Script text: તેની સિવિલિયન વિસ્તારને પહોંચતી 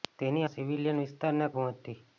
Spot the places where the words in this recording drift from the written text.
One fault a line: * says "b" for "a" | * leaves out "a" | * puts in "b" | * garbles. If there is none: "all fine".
all fine